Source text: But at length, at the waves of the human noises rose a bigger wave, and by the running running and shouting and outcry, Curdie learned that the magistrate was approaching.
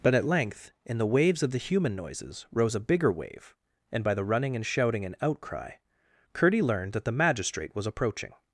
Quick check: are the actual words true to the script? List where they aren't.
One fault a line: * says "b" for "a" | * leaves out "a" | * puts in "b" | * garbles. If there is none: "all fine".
* says "in" for "at"
* leaves out "running"